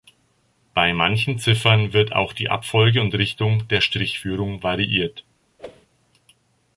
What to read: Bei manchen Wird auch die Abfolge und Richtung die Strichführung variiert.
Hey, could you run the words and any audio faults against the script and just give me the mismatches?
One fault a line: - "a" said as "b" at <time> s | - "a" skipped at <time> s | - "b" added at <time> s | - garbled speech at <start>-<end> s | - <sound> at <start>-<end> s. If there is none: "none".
- "Ziffern" added at 1.4 s
- "die" said as "der" at 3.7 s
- whoosh at 5.6-5.9 s